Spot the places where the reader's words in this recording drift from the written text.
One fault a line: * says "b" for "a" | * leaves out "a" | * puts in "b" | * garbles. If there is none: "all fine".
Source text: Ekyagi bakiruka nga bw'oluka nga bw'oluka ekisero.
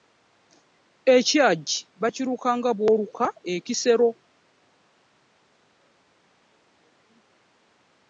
* leaves out "nga bw'oluka"